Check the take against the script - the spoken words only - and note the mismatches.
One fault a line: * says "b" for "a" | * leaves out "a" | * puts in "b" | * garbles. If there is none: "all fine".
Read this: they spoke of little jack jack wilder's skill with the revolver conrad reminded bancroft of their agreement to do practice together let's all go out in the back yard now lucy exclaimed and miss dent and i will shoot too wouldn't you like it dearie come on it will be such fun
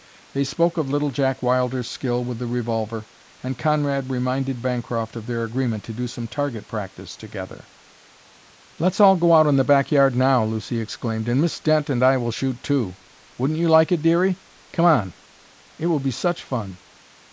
* leaves out "jack"
* puts in "and"
* puts in "some target"